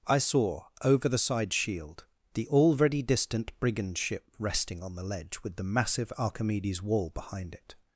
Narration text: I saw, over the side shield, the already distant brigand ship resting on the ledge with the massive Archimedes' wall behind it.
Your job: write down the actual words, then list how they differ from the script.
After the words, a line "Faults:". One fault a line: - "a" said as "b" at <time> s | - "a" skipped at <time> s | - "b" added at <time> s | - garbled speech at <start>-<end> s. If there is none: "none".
I saw, over the side shield, the already distant brigand ship resting on the ledge with the massive Archimedes' wall behind it.
Faults:
none